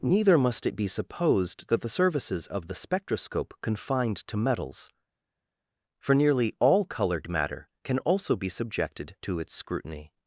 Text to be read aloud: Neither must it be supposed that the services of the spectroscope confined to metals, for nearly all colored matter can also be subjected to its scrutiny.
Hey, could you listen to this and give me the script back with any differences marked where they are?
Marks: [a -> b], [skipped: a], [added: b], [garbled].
Neither must it be supposed that the services of the spectroscope confined to metals, for nearly all colored matter can also be subjected to its scrutiny.